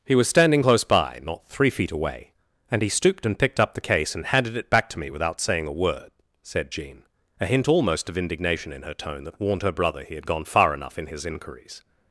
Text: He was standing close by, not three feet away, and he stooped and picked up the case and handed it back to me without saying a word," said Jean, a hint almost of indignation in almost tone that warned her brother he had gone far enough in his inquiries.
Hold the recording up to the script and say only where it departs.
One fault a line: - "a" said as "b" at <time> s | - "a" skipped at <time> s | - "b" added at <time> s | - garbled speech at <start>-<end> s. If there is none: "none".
- "almost" said as "her" at 8.8 s